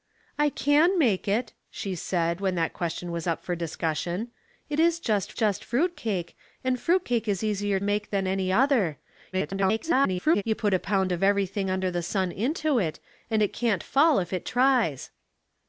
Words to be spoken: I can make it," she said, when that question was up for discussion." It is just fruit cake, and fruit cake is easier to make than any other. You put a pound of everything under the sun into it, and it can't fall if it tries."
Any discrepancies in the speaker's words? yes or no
yes